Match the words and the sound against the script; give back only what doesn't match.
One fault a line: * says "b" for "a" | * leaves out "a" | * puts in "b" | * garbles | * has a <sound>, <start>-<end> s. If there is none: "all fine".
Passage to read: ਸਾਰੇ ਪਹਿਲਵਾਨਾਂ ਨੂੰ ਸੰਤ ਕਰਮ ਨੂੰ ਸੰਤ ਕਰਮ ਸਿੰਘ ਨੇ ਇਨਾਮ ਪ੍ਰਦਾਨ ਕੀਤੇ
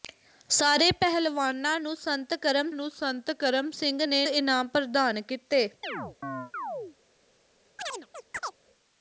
* has a chirp, 5.8-7.0 s
* has a chirp, 7.8-8.6 s